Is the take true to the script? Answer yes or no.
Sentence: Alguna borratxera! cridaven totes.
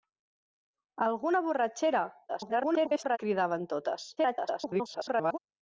no